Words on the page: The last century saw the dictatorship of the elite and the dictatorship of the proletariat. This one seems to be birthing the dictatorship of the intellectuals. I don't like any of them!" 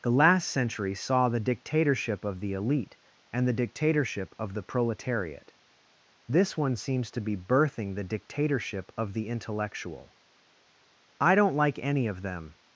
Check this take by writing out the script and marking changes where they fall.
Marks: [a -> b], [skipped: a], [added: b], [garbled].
The last century saw the dictatorship of the elite and the dictatorship of the proletariat. This one seems to be birthing the dictatorship of the [intellectuals. -> intellectual] I don't like any of them!"